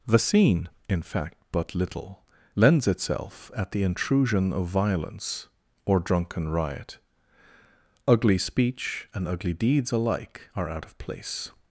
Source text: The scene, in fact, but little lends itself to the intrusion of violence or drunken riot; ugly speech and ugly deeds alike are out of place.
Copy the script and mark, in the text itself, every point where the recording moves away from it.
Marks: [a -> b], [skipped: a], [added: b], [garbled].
The scene, in fact, but little lends itself [to -> at] the intrusion of violence or drunken riot; ugly speech and ugly deeds alike are out of place.